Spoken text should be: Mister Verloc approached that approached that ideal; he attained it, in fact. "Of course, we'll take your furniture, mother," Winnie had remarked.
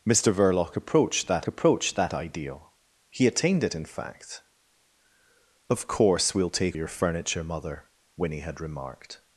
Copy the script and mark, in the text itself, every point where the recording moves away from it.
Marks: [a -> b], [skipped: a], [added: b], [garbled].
Mister Verloc approached that approached that ideal; he attained it, in fact. "Of course, we'll take your furniture, mother," Winnie had remarked.